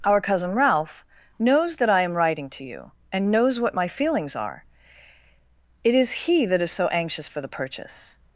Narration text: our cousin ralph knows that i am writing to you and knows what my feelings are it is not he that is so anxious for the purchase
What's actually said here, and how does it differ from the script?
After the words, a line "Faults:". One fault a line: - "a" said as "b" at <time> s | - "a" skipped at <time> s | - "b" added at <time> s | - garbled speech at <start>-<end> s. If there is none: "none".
our cousin ralph knows that i am writing to you and knows what my feelings are it is he that is so anxious for the purchase
Faults:
- "not" skipped at 6.1 s